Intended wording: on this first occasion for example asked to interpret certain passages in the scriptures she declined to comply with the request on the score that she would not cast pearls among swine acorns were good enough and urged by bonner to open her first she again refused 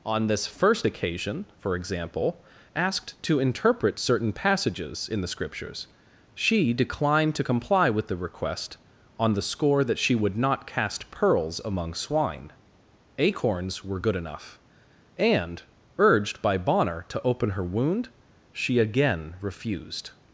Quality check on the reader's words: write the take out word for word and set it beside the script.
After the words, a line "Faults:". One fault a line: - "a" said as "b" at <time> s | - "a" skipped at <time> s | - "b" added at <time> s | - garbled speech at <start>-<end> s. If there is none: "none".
on this first occasion for example asked to interpret certain passages in the scriptures she declined to comply with the request on the score that she would not cast pearls among swine acorns were good enough and urged by bonner to open her wound she again refused
Faults:
- "first" said as "wound" at 17.6 s